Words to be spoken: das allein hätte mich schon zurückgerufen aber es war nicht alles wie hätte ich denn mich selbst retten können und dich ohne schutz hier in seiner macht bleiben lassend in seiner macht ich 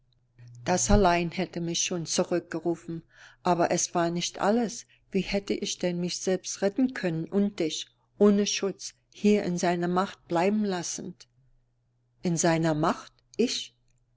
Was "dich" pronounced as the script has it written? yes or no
yes